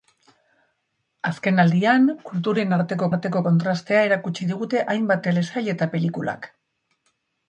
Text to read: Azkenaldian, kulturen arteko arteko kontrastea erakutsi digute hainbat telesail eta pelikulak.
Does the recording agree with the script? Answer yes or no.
yes